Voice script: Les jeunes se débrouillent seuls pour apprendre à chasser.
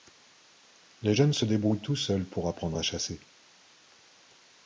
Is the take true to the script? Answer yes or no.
no